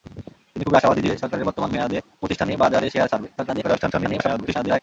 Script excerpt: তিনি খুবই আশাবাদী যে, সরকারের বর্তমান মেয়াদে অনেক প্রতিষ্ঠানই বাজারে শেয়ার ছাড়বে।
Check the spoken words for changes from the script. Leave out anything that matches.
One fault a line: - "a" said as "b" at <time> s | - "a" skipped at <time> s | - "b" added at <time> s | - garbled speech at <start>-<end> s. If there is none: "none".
- "অনেক" skipped at 2.0 s
- garbled speech at 3.4-4.8 s